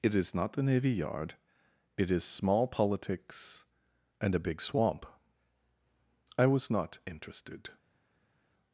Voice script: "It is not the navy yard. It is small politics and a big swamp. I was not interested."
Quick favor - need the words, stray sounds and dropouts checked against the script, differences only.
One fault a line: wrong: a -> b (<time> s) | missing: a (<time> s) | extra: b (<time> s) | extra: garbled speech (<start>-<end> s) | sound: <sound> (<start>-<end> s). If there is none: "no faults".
no faults